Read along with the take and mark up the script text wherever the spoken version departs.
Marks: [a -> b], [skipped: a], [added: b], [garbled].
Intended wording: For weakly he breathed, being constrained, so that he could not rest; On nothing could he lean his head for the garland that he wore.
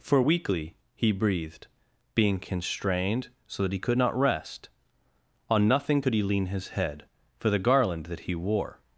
For weakly he breathed, being constrained, so that he could not rest; On nothing could he lean his head for the garland that he wore.